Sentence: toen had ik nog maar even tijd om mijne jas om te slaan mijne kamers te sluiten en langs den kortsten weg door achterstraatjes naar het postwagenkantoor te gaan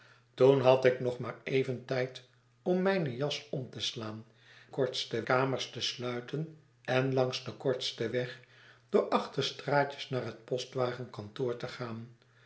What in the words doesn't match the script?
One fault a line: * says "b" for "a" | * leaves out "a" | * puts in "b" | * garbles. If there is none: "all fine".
* says "kortsten" for "mijne"